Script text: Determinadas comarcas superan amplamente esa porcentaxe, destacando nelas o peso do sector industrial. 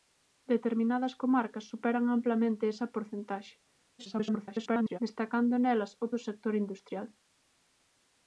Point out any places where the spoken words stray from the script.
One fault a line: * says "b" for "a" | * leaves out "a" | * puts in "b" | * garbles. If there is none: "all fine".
* garbles
* leaves out "peso"